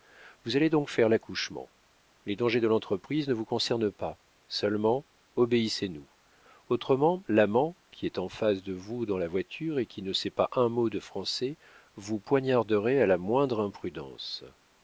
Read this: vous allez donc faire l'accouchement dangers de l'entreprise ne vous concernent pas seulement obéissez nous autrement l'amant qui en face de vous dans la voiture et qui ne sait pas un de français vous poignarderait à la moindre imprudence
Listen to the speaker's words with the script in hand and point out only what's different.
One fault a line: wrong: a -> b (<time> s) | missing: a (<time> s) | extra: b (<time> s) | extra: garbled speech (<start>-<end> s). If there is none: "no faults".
extra: les (2.2 s)
extra: est (8.1 s)
extra: mot (10.7 s)